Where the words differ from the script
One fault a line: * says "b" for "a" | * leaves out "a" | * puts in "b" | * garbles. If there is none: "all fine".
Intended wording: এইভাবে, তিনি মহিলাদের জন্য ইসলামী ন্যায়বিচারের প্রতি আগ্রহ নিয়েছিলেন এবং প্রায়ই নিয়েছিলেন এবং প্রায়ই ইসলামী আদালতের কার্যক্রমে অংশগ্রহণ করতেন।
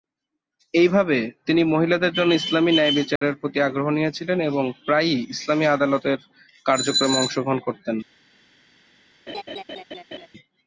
* leaves out "নিয়েছিলেন এবং প্রায়ই"